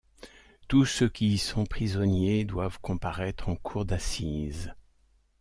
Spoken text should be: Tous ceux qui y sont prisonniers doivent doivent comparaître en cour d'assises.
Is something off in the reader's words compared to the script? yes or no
yes